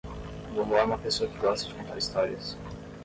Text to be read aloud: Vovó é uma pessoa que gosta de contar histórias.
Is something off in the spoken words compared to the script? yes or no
no